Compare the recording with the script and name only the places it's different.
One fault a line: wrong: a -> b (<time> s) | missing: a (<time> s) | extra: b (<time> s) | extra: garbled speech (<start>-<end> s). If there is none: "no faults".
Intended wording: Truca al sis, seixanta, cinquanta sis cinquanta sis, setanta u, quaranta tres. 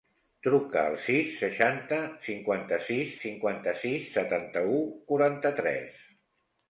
no faults